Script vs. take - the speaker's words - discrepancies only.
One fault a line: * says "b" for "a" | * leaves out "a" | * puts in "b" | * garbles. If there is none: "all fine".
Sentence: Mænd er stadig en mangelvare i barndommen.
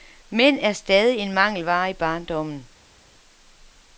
all fine